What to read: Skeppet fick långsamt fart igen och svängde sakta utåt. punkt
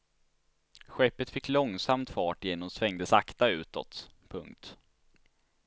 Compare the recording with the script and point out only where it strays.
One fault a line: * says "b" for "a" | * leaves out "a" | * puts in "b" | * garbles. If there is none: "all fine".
all fine